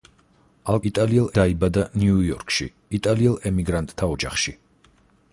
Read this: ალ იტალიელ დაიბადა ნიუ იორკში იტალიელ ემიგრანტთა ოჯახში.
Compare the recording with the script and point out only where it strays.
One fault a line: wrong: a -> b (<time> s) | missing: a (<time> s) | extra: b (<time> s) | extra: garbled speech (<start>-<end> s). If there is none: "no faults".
no faults